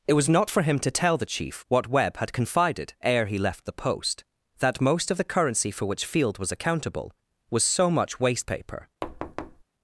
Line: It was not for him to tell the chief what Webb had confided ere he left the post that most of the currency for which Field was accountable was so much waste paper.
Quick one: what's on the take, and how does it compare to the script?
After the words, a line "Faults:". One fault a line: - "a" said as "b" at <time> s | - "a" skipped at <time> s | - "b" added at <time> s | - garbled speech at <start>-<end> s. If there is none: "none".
It was not for him to tell the chief what Webb had confided ere he left the post that most of the currency for which Field was accountable was so much waste paper.
Faults:
none